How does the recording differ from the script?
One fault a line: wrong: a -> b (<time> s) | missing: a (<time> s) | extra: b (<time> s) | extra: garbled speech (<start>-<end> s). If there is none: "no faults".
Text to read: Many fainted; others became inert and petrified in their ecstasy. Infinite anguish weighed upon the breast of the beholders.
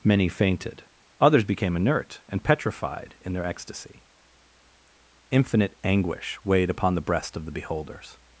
no faults